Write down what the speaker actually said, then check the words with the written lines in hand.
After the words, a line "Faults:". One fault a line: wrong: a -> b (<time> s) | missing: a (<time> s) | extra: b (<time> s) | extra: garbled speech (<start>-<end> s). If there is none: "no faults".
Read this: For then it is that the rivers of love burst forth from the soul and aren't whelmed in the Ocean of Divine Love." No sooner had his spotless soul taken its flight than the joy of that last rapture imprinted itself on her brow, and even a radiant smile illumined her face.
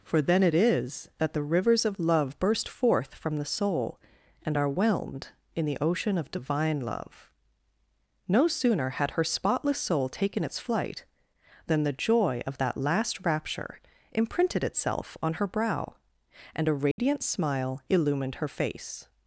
For then it is that the rivers of love burst forth from the soul and are whelmed in the Ocean of Divine Love." No sooner had her spotless soul taken its flight than the joy of that last rapture imprinted itself on her brow, and a radiant smile illumined her face.
Faults:
wrong: aren't -> are (4.6 s)
wrong: his -> her (9.1 s)
missing: even (16.7 s)